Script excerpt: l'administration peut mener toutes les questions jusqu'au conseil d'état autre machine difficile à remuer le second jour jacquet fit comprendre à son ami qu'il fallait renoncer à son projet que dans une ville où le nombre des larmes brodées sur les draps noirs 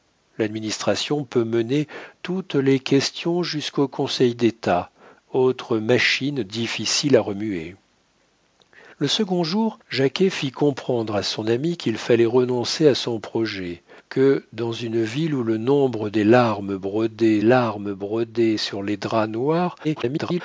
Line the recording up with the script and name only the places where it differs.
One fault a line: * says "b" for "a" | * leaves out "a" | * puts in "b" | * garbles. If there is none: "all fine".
* puts in "larmes brodées"
* garbles